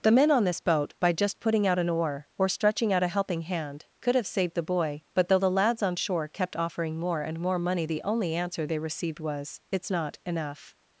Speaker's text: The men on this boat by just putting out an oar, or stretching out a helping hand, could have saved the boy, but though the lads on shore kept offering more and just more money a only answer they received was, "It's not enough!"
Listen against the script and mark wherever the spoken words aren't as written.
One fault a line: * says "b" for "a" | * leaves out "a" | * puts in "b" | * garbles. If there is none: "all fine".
* leaves out "just"
* says "the" for "a"